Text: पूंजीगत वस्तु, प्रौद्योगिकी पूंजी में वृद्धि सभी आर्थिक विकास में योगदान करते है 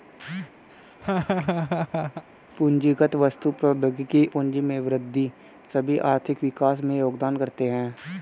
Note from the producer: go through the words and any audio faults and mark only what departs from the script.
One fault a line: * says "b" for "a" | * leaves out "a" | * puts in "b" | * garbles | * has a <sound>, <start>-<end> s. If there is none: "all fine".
* has a laugh, 0.7-2.2 s